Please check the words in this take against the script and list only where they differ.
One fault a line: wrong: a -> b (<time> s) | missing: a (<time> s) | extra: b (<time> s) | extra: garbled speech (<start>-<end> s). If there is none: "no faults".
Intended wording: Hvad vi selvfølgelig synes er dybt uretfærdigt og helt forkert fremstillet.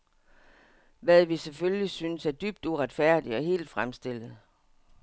missing: forkert (3.7 s)